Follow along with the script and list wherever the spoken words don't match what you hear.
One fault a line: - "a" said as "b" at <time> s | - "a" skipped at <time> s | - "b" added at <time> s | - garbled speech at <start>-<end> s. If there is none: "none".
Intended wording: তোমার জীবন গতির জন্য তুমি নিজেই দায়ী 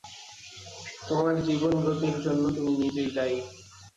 none